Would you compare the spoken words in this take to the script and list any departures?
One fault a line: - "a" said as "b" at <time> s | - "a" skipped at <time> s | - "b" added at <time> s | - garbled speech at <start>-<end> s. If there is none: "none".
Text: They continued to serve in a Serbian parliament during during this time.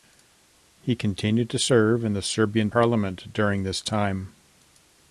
- "They" said as "He" at 0.8 s
- "a" said as "the" at 2.1 s
- "during" skipped at 3.6 s